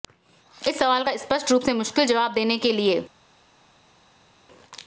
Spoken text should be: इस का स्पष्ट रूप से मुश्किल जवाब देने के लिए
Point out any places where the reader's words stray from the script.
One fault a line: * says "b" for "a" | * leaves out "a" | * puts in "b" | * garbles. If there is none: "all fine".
* puts in "सवाल"